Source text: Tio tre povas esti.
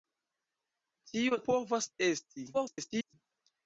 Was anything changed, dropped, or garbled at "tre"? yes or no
yes